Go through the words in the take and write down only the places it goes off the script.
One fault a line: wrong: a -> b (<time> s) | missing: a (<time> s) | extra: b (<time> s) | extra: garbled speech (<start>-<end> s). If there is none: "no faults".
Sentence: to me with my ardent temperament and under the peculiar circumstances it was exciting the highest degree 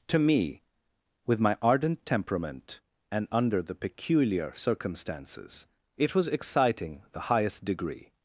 no faults